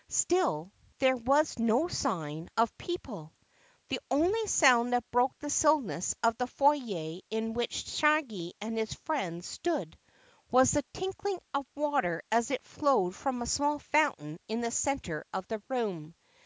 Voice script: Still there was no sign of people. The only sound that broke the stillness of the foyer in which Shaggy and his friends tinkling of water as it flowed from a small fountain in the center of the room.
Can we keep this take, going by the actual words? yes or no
no